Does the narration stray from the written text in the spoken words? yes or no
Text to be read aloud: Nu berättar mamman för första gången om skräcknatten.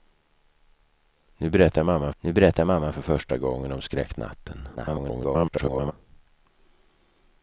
yes